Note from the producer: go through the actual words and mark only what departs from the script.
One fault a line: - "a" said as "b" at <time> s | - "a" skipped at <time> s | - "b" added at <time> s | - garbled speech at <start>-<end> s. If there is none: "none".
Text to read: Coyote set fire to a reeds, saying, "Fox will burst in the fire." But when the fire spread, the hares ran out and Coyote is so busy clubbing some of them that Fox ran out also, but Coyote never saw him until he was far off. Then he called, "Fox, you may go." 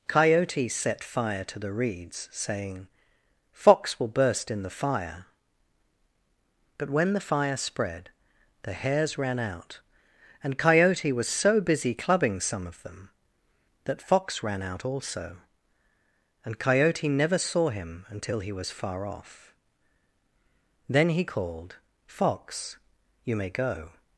- "a" said as "the" at 1.6 s
- "is" said as "was" at 11.1 s
- "but" said as "and" at 16.4 s